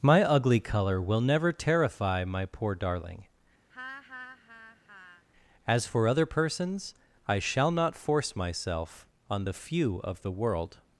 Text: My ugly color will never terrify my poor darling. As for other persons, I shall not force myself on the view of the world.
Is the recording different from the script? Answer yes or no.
yes